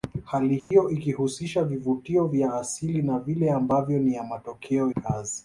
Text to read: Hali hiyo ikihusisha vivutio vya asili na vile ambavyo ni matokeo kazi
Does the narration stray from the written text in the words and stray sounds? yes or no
yes